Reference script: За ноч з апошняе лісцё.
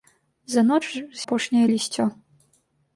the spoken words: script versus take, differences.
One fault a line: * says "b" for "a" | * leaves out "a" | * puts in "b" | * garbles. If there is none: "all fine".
all fine